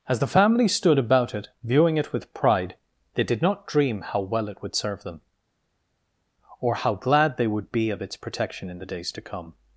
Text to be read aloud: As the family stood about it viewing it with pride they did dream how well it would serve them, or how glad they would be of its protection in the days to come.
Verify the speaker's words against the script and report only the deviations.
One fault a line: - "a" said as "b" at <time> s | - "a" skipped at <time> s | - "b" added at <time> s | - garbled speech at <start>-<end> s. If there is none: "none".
- "not" added at 3.4 s